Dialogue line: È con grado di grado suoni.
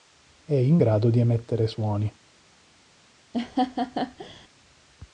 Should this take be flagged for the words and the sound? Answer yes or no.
yes